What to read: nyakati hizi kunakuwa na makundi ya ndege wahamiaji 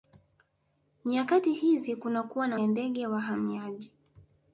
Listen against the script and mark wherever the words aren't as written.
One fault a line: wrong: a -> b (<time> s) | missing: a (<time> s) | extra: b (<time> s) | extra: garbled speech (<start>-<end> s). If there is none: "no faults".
missing: makundi (2.6 s)